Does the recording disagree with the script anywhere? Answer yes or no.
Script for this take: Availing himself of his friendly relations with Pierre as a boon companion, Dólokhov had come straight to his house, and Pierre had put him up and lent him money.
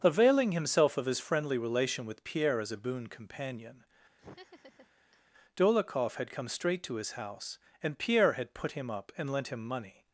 yes